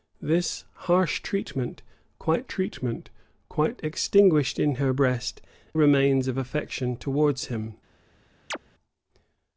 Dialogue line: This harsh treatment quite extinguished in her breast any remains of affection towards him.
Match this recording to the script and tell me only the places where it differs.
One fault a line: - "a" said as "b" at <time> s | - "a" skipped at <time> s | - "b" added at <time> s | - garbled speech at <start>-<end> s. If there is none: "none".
- "treatment quite" added at 2.5 s
- "any" skipped at 5.4 s